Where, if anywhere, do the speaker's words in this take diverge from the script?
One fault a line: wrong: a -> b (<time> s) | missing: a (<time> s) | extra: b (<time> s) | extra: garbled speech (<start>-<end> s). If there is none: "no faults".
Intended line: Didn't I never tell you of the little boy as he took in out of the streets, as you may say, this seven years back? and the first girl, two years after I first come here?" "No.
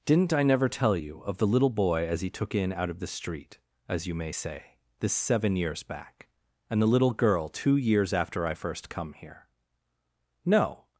wrong: streets -> street (3.1 s)
wrong: first -> little (6.9 s)